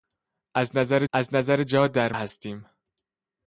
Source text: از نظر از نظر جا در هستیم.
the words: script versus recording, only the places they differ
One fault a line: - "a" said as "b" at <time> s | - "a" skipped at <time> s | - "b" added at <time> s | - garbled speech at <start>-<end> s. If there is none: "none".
none